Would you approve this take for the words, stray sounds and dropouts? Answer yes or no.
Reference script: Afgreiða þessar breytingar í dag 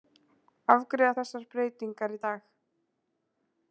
yes